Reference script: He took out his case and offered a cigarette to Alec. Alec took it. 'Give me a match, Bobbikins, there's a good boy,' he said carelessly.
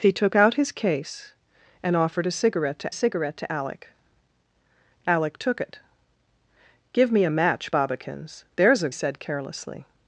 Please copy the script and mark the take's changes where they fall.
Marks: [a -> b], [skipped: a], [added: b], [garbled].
He took out his case and offered a cigarette to [added: cigarette to] Alec. Alec took it. 'Give me a match, Bobbikins, there's a [skipped: good boy,' he] said carelessly.